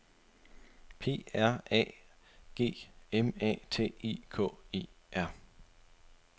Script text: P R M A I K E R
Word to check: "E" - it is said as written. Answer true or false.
true